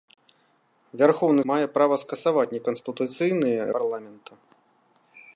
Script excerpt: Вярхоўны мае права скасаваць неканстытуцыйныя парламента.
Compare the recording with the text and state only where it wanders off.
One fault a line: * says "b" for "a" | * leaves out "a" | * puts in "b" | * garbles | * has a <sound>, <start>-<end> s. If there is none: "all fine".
all fine